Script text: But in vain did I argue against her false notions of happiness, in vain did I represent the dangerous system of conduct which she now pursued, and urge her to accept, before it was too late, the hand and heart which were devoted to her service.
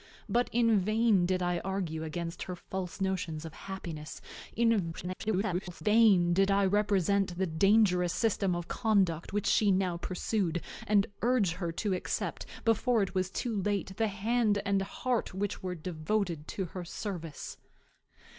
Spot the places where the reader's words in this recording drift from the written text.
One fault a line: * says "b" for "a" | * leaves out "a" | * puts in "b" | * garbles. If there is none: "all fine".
* garbles